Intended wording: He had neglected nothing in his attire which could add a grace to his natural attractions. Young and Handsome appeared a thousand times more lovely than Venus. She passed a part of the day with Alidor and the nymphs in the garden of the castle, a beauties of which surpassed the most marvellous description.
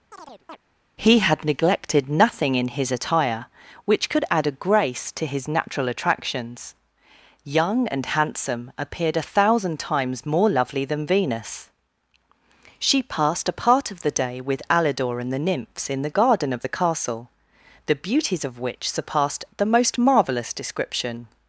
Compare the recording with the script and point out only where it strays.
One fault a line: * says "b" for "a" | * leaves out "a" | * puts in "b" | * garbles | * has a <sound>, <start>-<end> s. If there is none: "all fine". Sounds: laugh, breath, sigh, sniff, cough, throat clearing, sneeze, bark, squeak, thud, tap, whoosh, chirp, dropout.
* has a chirp, 0.1-0.6 s
* says "the" for "a"